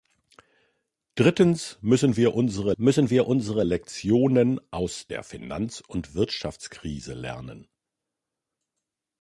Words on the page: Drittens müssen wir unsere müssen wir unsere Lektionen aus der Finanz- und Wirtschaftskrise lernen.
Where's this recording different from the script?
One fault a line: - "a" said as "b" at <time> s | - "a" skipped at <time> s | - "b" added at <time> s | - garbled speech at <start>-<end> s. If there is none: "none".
none